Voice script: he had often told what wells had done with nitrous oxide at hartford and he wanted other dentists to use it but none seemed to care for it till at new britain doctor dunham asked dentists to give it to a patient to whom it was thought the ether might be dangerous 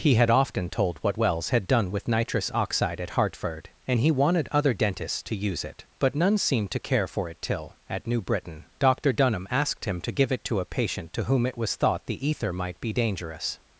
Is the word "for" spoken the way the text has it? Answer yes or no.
yes